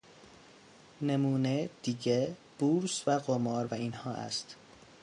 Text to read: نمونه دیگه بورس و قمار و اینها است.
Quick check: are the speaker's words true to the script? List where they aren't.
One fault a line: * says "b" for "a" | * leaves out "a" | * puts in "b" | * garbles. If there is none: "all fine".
all fine